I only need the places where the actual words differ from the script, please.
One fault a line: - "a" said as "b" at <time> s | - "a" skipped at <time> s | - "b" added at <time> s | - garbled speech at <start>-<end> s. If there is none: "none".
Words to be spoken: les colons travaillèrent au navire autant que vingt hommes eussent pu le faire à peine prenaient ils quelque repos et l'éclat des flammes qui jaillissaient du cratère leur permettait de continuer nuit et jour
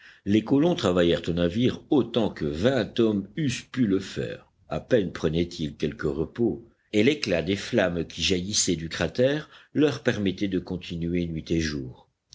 none